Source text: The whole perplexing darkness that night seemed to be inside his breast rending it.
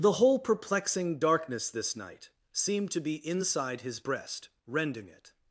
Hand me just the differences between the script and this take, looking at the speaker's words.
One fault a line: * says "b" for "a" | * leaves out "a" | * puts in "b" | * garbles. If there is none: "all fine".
* says "this" for "that"